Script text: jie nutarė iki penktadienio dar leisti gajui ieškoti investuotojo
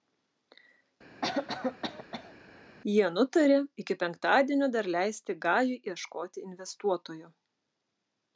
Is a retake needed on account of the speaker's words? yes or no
no